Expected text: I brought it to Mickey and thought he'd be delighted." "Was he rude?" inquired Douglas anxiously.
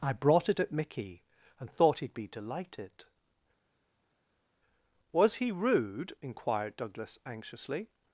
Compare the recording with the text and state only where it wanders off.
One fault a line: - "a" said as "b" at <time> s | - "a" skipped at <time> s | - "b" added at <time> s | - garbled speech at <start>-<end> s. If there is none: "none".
- "to" said as "at" at 0.6 s